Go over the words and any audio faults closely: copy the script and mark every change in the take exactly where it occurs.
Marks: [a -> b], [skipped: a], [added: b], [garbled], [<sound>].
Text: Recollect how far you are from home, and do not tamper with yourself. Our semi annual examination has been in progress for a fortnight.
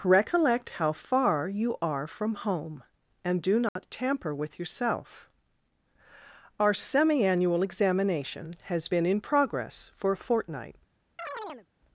Recollect how far you are from home, and do not [dropout] tamper with yourself. Our semi annual examination has been in progress for a fortnight. [chirp]